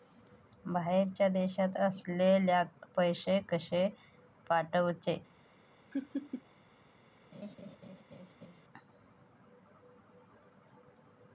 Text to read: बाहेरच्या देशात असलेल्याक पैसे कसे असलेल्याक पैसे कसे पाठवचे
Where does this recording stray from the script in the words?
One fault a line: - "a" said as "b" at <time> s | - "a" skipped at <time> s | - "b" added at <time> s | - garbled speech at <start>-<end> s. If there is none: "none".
- "असलेल्याक पैसे कसे" skipped at 3.9 s